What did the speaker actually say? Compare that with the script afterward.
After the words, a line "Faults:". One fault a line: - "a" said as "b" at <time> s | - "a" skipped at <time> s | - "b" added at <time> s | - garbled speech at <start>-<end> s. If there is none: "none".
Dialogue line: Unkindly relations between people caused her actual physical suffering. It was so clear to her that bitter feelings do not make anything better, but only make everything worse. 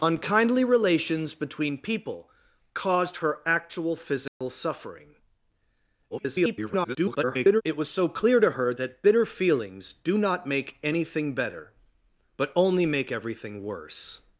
Unkindly relations between people caused her actual physical suffering. [garbled] It was so clear to her that bitter feelings do not make anything better, but only make everything worse.
Faults:
- garbled speech at 6.1-7.6 s